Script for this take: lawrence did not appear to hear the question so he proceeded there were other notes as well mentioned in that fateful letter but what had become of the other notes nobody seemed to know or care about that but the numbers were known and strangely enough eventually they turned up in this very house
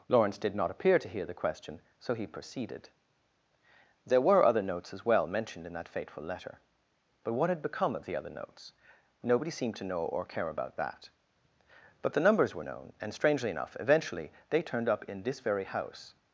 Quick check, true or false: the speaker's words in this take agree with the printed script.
true